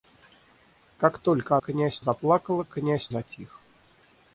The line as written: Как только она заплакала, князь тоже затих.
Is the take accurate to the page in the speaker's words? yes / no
no